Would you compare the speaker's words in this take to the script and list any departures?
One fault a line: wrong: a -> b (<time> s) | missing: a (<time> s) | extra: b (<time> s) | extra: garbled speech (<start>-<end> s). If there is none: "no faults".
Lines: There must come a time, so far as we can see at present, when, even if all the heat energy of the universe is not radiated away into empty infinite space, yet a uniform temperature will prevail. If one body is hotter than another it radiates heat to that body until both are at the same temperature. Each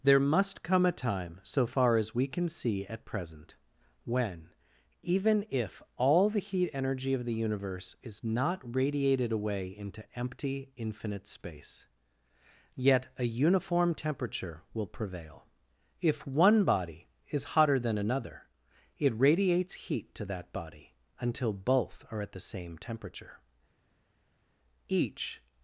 no faults